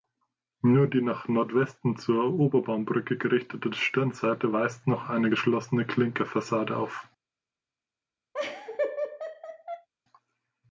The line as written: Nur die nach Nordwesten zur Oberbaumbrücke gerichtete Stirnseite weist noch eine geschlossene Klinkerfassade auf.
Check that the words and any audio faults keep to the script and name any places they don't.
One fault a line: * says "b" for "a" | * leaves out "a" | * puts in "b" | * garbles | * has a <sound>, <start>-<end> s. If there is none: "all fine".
* has a laugh, 8.3-9.9 s